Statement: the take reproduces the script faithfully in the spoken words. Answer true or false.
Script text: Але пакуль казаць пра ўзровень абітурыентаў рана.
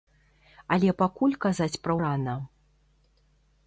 false